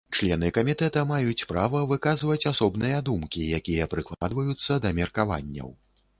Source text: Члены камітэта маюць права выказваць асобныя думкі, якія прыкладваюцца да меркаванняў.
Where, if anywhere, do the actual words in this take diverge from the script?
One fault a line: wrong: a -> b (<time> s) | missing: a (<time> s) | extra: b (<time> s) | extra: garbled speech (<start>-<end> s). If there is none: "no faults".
no faults